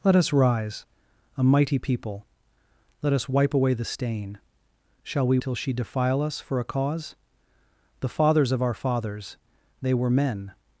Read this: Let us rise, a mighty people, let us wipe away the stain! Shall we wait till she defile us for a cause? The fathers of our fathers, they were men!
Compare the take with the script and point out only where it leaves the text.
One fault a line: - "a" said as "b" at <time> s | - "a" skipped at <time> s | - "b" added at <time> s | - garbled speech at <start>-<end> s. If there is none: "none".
- "wait" skipped at 5.4 s